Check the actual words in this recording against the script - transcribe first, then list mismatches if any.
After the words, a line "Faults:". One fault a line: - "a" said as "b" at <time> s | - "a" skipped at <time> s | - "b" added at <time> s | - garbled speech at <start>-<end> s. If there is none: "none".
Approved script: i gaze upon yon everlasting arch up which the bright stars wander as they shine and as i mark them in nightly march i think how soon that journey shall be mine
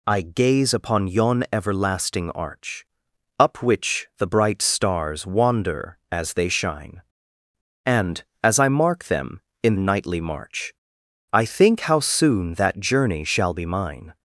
i gaze upon yon everlasting arch up which the bright stars wander as they shine and as i mark them in nightly march i think how soon that journey shall be mine
Faults:
none